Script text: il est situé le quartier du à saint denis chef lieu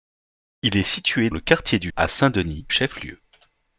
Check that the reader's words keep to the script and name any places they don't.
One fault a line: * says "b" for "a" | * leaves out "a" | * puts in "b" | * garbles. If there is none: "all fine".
all fine